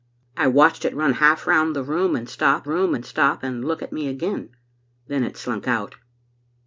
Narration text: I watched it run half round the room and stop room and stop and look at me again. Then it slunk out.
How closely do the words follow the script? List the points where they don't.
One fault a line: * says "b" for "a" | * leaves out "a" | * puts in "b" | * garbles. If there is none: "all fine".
all fine